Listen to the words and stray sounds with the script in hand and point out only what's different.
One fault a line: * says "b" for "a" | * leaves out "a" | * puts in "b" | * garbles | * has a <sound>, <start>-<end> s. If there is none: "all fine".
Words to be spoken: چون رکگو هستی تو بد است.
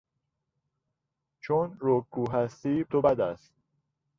all fine